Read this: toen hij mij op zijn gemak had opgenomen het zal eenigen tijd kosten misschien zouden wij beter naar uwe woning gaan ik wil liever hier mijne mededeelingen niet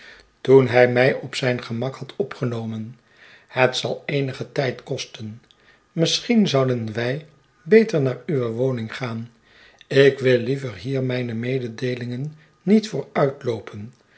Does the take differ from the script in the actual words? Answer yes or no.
no